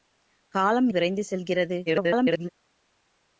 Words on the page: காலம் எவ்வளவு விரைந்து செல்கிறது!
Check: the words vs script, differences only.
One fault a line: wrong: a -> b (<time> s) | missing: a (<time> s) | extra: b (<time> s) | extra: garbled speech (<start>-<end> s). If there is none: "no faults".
missing: எவ்வளவு (0.9 s)
extra: garbled speech (1.9-2.5 s)